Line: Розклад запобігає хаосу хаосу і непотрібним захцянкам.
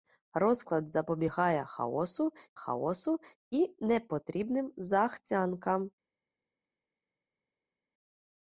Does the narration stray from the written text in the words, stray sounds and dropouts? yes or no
no